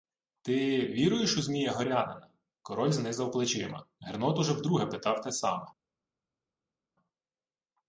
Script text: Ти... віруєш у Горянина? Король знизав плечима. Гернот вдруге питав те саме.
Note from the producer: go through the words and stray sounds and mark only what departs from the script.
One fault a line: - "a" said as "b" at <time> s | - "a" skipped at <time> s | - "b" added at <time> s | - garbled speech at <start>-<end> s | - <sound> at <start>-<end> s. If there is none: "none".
- "Змія" added at 1.4 s
- "уже" added at 4.4 s